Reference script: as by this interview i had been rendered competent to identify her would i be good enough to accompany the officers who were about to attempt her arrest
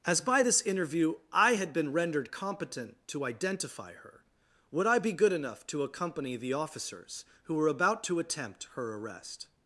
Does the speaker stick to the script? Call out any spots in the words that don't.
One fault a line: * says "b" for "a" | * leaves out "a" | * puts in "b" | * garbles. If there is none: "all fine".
all fine